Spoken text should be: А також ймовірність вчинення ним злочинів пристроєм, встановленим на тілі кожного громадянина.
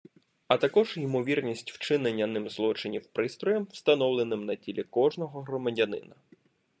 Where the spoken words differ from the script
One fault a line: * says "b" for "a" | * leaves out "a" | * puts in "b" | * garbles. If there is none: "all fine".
all fine